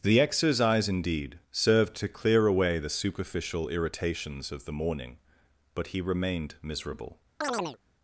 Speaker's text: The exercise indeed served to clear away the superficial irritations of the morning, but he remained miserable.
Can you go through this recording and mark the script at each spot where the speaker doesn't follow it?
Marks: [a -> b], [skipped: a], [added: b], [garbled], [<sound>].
The exercise indeed served to clear away the superficial irritations of the morning, but he remained miserable. [chirp]